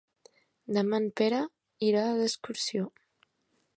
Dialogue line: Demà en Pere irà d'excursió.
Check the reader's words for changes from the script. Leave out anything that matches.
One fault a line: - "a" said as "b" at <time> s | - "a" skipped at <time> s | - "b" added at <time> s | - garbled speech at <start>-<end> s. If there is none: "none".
none